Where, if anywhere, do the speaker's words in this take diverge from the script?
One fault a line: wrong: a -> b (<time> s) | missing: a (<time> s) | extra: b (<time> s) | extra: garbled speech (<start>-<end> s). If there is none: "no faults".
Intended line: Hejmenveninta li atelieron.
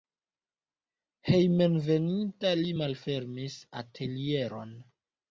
extra: malfermis (2.8 s)